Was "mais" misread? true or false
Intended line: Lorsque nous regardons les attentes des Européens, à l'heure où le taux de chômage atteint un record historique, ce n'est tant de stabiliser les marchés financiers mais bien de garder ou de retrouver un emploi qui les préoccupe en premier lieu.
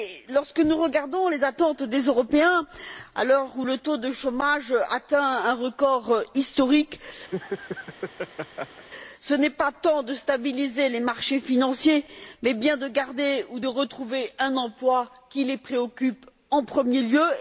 false